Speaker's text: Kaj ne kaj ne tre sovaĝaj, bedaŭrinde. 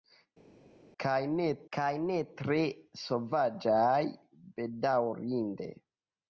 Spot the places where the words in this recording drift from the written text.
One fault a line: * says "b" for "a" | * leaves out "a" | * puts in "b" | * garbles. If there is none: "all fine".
all fine